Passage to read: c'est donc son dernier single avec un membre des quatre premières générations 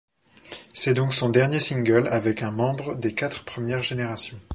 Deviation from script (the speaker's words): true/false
false